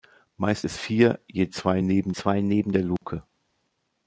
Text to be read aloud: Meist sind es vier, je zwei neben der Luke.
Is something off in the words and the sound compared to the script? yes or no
yes